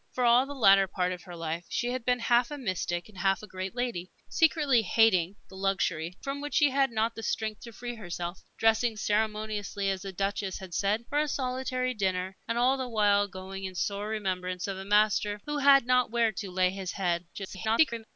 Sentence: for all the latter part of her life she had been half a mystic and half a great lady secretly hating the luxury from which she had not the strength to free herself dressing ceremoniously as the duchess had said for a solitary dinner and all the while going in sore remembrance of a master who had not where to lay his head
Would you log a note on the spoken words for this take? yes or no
yes